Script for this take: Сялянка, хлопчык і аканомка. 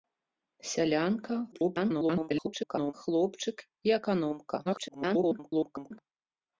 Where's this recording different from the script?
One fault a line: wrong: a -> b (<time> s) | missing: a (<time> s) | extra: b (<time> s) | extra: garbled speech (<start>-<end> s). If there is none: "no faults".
extra: garbled speech (1.5-2.9 s)
extra: garbled speech (4.6-6.0 s)